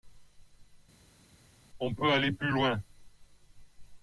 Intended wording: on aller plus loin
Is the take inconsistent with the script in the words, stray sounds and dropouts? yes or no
yes